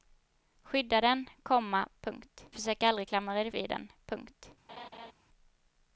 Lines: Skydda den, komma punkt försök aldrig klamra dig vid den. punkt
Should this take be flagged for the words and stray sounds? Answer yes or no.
yes